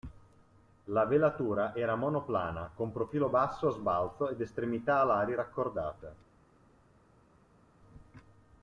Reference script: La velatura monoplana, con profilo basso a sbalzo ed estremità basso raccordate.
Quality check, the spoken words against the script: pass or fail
fail